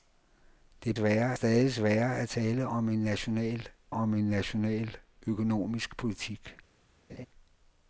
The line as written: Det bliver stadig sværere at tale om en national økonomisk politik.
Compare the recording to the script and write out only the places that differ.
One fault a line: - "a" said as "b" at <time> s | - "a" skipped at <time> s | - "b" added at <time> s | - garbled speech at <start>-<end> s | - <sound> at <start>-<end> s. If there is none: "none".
- "bliver" said as "sværere" at 0.9 s
- "om en national" added at 3.9 s
- laugh at 7.1-7.3 s